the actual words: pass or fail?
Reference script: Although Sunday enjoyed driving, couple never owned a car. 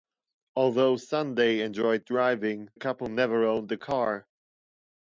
pass